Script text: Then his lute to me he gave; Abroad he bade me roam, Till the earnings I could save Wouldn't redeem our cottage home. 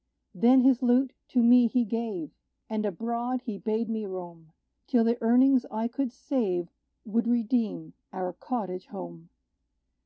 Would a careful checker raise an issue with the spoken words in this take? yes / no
yes